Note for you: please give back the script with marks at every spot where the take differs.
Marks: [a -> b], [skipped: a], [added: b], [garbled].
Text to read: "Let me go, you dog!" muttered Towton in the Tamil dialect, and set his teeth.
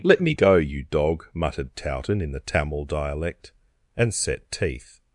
"Let me go, you dog!" muttered Towton in the Tamil dialect, and set [skipped: his] teeth.